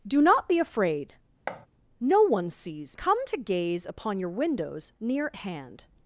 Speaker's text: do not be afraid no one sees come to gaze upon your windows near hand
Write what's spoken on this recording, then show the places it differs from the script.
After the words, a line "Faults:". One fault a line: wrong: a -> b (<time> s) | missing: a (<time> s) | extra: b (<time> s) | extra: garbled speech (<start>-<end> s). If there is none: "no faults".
do not be afraid no one sees come to gaze upon your windows near hand
Faults:
no faults